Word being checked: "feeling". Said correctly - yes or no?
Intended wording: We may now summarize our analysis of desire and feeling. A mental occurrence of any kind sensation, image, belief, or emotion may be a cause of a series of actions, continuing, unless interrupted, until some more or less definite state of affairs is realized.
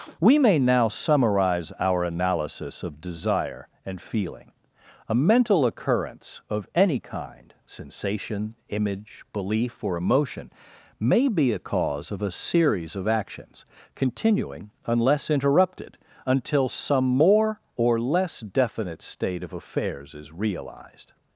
yes